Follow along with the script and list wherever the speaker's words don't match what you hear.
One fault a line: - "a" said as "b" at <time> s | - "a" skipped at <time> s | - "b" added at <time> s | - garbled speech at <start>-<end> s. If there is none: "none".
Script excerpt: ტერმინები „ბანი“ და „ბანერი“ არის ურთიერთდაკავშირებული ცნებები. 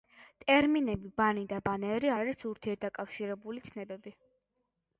none